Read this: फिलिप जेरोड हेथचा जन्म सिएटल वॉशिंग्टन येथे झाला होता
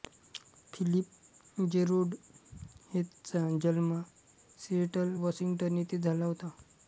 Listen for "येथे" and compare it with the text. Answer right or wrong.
right